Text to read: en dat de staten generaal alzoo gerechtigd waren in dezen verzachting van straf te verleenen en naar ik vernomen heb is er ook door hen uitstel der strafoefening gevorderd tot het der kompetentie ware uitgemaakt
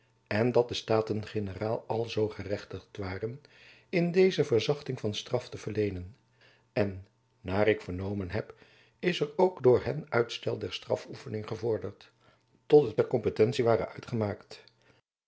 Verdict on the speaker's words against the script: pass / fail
pass